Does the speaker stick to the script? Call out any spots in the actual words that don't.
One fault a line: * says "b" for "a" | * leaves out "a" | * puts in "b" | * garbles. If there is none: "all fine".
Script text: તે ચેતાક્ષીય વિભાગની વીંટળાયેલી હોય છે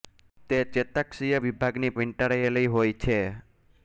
all fine